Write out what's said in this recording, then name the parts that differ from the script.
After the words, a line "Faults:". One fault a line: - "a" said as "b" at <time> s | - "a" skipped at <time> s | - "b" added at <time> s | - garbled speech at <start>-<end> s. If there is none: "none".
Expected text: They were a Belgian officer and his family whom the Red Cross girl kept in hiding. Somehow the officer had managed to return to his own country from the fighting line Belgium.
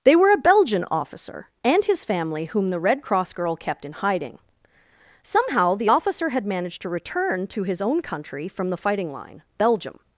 They were a Belgian officer and his family whom the Red Cross girl kept in hiding. Somehow the officer had managed to return to his own country from the fighting line Belgium.
Faults:
none